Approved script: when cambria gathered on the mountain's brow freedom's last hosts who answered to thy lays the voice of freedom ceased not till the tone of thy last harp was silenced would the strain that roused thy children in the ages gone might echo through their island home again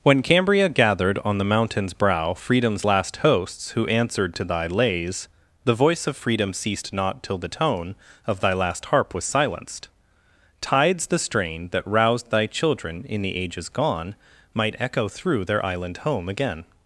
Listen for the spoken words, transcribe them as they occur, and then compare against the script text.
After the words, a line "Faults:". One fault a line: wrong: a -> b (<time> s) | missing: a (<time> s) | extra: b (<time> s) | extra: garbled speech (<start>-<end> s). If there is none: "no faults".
when cambria gathered on the mountain's brow freedom's last hosts who answered to thy lays the voice of freedom ceased not till the tone of thy last harp was silenced tides the strain that roused thy children in the ages gone might echo through their island home again
Faults:
wrong: would -> tides (10.6 s)